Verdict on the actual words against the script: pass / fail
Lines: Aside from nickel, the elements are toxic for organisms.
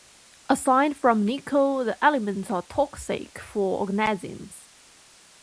pass